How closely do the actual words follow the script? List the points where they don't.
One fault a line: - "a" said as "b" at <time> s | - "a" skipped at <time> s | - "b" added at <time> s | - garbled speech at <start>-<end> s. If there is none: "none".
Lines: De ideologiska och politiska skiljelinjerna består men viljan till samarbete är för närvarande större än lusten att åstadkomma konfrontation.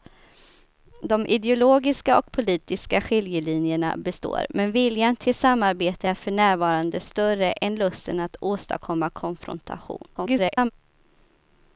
- garbled speech at 10.1-10.7 s